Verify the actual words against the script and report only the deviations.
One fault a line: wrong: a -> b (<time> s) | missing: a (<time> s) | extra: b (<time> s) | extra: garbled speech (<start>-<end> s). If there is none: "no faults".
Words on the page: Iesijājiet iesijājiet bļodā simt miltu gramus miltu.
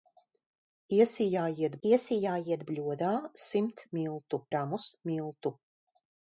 no faults